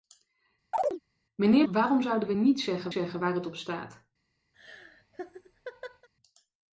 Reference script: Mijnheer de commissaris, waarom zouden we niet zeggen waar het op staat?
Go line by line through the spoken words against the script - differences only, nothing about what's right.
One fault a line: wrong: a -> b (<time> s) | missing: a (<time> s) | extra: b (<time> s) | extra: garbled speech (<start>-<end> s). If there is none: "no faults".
missing: de commissaris (1.7 s)
extra: zeggen (2.9 s)